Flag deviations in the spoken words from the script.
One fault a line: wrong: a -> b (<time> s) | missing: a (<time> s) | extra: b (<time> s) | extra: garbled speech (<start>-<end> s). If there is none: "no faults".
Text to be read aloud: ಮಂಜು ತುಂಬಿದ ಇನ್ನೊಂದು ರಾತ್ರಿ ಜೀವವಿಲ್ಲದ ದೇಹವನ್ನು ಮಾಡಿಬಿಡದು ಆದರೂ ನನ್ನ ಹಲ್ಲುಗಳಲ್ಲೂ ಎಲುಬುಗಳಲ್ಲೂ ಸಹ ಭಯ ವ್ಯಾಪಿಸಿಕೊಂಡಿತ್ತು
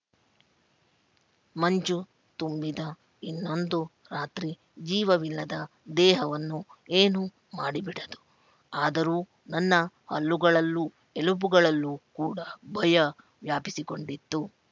extra: ಏನೂ (6.9 s)
wrong: ಸಹ -> ಕೂಡ (12.1 s)